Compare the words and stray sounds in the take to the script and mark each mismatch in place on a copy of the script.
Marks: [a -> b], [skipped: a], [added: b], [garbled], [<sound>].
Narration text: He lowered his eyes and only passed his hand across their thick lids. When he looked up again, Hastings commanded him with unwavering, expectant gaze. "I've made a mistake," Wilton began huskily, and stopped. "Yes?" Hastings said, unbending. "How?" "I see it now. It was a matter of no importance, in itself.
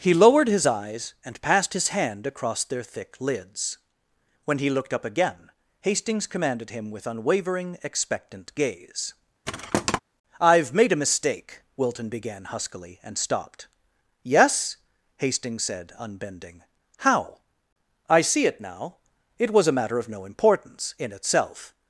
He lowered his eyes and [skipped: only] passed his hand across their thick lids. When he looked up again, Hastings commanded him with unwavering, expectant gaze. [thud] "I've made a mistake," Wilton began huskily, and stopped. "Yes?" Hastings said, unbending. "How?" "I see it now. It was a matter of no importance, in itself.